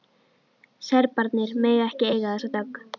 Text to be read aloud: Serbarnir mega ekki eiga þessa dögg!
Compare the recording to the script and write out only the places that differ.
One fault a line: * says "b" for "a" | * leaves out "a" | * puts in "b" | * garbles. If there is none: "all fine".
all fine